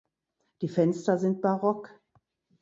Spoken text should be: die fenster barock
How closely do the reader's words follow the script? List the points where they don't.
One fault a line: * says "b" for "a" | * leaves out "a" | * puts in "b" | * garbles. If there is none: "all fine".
* puts in "sind"